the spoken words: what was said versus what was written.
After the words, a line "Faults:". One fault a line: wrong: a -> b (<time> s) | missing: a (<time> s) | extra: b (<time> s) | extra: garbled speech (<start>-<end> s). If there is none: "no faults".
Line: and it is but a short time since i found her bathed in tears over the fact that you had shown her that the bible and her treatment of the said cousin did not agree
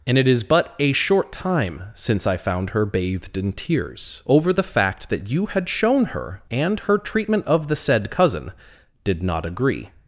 and it is but a short time since i found her bathed in tears over the fact that you had shown her and her treatment of the said cousin did not agree
Faults:
missing: that the bible (6.4 s)